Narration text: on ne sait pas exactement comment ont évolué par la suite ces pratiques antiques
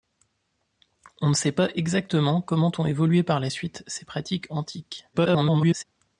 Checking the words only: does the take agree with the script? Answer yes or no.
no